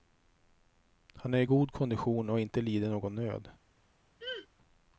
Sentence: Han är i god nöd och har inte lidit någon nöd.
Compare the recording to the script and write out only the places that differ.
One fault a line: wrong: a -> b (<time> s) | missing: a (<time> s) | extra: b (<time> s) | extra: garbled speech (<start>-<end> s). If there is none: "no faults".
wrong: nöd -> kondition (1.7 s)